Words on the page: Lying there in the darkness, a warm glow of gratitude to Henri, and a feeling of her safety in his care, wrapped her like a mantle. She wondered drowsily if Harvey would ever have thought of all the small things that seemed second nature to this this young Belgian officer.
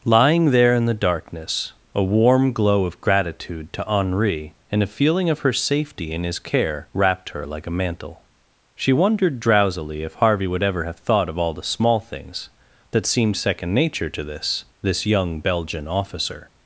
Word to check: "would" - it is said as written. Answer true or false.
true